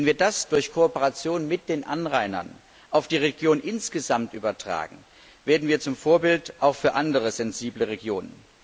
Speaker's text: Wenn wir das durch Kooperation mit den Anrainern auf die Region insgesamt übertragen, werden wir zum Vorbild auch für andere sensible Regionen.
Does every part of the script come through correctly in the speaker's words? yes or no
yes